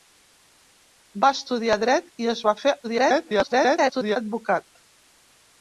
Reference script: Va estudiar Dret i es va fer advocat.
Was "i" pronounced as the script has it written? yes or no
yes